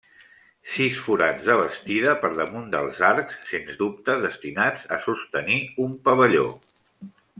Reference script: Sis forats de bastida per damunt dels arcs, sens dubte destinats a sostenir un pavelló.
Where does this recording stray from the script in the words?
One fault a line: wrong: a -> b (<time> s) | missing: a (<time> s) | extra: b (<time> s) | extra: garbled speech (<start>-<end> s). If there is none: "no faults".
no faults